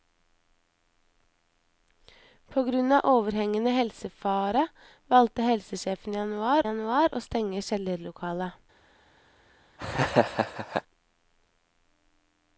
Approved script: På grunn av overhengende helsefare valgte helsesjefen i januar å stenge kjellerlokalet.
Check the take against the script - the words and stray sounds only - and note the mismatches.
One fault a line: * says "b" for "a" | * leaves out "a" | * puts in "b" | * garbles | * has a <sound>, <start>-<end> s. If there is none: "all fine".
* puts in "januar"
* has a laugh, 9.8-10.8 s